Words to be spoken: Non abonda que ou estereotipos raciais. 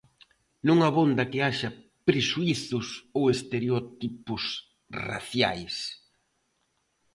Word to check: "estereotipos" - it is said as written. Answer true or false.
true